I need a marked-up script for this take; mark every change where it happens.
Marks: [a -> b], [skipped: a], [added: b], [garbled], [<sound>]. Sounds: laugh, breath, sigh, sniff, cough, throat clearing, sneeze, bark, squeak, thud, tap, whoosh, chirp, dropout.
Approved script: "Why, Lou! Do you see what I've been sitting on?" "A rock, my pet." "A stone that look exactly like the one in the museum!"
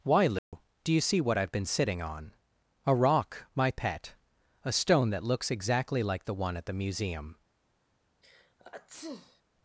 "Why, Lou! [dropout] Do you see what I've been sitting on?" "A rock, my pet." "A stone that [look -> looks] exactly like the one [in -> at] the museum!" [sneeze]